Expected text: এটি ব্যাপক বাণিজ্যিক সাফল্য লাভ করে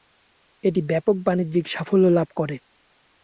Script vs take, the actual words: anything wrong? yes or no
no